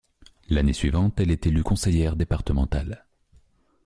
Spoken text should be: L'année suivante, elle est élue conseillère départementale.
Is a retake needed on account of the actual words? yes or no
no